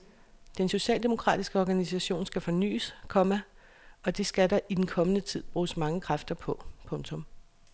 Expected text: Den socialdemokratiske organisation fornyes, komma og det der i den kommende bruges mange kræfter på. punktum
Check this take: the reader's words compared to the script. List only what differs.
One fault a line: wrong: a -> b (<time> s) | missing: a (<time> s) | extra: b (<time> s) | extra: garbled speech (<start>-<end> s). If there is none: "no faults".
extra: skal (2.3 s)
extra: skal (4.3 s)
extra: tid (5.2 s)